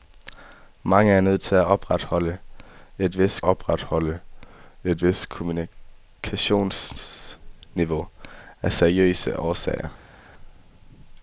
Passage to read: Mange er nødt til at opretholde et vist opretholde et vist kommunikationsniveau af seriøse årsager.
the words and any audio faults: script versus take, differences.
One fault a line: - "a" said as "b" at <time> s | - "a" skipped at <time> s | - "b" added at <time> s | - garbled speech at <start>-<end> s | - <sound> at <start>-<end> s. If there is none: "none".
none